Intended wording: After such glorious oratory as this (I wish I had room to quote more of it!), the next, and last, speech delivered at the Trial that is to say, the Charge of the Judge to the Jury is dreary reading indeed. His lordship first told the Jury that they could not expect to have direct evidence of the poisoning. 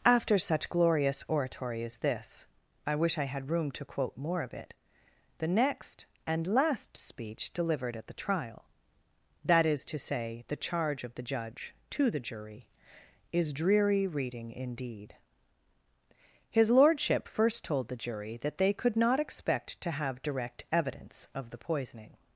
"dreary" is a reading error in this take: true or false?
false